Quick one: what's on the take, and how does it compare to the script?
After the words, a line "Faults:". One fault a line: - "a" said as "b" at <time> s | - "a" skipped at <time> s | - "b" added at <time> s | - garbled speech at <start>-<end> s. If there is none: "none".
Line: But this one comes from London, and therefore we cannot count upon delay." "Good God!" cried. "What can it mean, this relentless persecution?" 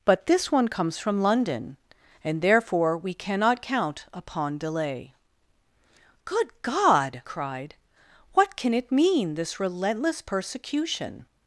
But this one comes from London, and therefore we cannot count upon delay." "Good God!" cried. "What can it mean, this relentless persecution?"
Faults:
none